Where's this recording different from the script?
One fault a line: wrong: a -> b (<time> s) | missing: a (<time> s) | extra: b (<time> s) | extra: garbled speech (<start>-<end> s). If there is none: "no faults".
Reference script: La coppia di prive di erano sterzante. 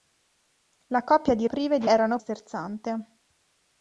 no faults